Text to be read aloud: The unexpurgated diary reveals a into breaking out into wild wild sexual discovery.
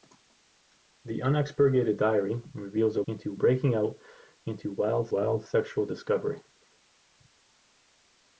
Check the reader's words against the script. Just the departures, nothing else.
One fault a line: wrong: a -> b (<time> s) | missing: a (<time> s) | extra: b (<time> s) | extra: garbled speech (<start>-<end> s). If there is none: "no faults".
no faults